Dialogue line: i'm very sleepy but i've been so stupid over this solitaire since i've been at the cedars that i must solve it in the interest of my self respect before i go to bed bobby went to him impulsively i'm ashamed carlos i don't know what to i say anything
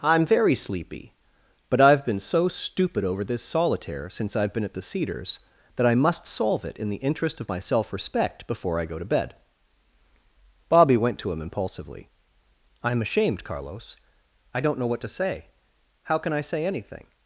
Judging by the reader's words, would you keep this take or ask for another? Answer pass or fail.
fail